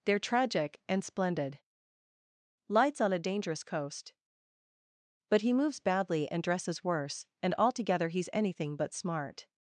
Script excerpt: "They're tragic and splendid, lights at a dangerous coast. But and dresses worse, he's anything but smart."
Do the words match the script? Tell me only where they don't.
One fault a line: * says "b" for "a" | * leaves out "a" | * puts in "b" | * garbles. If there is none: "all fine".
* says "on" for "at"
* puts in "he moves badly"
* puts in "and altogether"